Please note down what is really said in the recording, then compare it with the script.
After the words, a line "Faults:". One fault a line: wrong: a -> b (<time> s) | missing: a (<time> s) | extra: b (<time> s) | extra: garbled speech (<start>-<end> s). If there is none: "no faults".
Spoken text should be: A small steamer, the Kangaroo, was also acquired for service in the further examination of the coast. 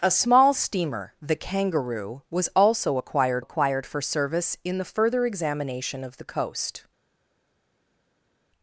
A small steamer, the Kangaroo, was also acquired acquired for service in the further examination of the coast.
Faults:
extra: acquired (3.4 s)